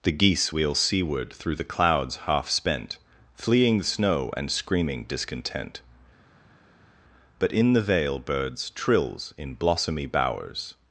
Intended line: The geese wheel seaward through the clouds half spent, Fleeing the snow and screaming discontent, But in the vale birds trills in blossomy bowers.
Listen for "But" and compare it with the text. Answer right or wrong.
right